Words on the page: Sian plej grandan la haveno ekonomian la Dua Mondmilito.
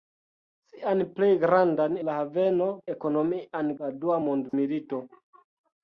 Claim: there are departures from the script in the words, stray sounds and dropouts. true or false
true